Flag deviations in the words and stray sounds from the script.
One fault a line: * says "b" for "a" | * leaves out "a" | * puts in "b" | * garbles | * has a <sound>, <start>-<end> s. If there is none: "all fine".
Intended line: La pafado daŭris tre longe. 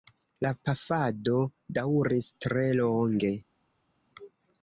all fine